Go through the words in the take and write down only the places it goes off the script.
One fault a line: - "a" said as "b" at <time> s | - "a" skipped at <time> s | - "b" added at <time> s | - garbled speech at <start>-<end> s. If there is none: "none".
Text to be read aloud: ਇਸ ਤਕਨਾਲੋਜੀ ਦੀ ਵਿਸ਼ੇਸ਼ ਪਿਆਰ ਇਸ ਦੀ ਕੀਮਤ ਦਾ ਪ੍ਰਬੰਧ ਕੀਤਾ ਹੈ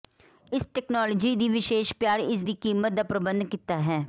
none